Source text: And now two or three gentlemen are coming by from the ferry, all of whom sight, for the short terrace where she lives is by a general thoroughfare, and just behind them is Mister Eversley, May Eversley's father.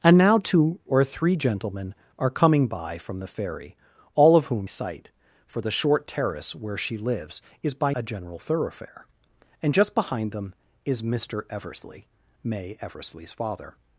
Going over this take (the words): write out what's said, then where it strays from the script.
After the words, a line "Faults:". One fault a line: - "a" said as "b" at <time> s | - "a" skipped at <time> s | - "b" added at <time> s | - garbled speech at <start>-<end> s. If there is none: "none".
And now two or three gentlemen are coming by from the ferry, all of whom sight, for the short terrace where she lives is by a general thoroughfare, and just behind them is Mister Eversley, May Eversley's father.
Faults:
none